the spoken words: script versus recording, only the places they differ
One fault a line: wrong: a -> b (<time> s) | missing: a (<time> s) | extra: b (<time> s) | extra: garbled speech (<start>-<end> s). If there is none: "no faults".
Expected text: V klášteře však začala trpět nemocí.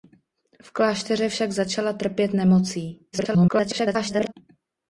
extra: garbled speech (3.1-4.3 s)